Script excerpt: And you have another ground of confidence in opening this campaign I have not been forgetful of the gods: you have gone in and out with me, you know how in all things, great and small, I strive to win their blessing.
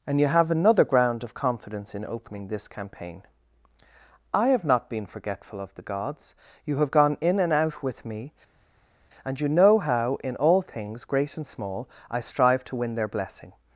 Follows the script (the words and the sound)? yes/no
no